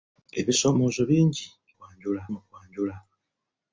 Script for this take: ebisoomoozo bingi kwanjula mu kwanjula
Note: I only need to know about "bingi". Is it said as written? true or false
true